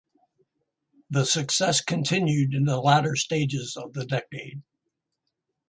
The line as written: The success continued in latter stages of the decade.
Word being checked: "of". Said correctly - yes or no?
yes